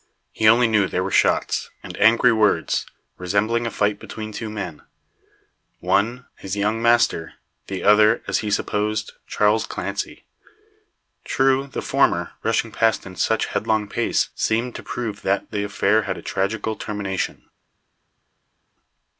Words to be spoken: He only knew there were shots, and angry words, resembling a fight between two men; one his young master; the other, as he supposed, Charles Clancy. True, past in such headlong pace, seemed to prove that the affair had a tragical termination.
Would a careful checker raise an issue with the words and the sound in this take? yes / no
yes